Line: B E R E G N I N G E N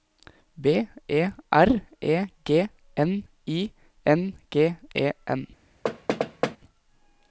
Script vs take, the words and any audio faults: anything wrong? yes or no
yes